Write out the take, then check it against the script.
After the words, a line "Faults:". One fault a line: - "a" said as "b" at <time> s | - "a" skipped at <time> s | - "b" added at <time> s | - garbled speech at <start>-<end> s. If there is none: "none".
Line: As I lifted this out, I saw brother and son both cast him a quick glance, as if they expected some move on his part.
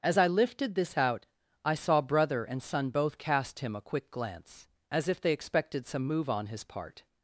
As I lifted this out, I saw brother and son both cast him a quick glance, as if they expected some move on his part.
Faults:
none